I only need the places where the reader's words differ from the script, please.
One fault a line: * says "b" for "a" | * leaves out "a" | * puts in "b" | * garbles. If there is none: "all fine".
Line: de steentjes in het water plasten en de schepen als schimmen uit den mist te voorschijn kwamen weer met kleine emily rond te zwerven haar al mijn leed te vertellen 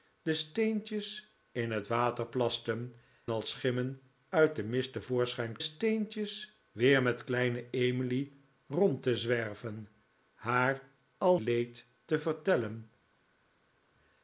* leaves out "en de schepen"
* says "steentjes" for "kwamen"
* leaves out "mijn"